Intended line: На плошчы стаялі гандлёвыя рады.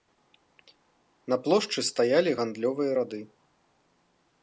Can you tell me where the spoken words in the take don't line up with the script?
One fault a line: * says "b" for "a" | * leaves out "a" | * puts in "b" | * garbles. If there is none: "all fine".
all fine